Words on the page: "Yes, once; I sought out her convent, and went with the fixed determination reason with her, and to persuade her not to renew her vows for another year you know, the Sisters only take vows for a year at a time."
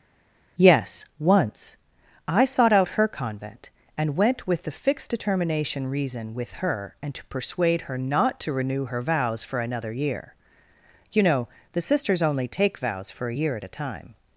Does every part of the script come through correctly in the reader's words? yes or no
yes